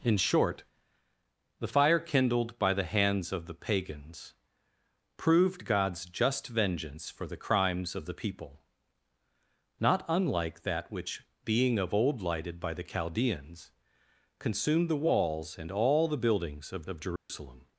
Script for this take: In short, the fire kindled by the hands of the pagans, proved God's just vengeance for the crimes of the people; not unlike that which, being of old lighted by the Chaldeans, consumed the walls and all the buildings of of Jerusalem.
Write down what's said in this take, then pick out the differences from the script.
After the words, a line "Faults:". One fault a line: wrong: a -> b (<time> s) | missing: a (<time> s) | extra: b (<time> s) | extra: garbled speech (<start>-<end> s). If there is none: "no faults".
In short, the fire kindled by the hands of the pagans, proved God's just vengeance for the crimes of the people; not unlike that which, being of old lighted by the Chaldeans, consumed the walls and all the buildings of of Jerusalem.
Faults:
no faults